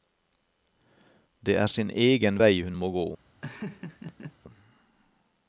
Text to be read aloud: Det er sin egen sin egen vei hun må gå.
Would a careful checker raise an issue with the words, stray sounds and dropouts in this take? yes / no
yes